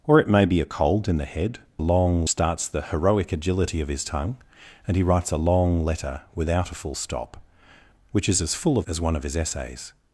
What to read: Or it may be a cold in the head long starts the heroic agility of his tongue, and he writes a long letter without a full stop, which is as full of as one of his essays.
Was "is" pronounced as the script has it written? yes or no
yes